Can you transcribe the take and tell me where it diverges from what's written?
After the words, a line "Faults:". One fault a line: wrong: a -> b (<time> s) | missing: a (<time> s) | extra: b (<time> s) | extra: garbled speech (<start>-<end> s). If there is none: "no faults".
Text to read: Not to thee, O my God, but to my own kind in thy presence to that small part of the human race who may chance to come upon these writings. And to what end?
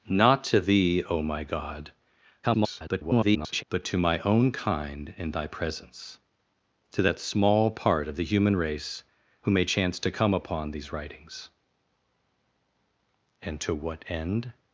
Not to thee, O my God, [garbled] but to my own kind in thy presence to that small part of the human race who may chance to come upon these writings. And to what end?
Faults:
extra: garbled speech (2.4-3.6 s)